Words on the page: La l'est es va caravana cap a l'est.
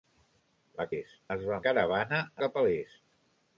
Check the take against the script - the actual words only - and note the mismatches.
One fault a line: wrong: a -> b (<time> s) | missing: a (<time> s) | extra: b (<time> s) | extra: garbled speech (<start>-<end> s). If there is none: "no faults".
no faults